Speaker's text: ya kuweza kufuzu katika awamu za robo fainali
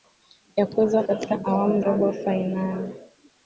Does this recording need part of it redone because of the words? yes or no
yes